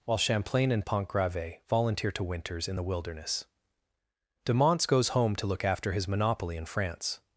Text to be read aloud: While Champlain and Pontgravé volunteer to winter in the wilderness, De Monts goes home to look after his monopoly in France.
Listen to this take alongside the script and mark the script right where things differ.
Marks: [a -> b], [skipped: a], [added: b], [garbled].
While Champlain and Pontgravé volunteer to [winter -> winters] in the wilderness, De Monts goes home to look after his monopoly in France.